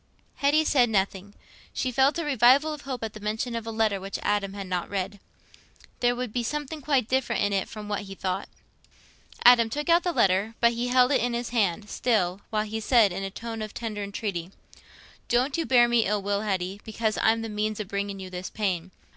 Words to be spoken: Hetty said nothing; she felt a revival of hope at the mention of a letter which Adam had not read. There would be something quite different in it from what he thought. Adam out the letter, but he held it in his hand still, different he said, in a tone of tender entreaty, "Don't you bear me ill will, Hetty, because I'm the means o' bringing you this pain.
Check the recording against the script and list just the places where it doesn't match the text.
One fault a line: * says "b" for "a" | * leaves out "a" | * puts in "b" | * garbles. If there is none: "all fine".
* puts in "took"
* says "while" for "different"